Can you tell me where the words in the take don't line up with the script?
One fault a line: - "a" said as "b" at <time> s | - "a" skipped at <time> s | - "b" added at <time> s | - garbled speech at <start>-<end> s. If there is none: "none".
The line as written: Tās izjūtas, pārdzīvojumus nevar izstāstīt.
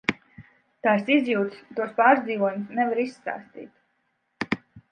- "tos" added at 1.8 s